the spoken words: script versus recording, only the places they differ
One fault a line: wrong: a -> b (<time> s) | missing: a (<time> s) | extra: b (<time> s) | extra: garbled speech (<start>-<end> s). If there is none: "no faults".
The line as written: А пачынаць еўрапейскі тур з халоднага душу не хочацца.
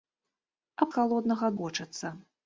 missing: пачынаць еўрапейскі тур (0.9 s)
missing: душу не (1.5 s)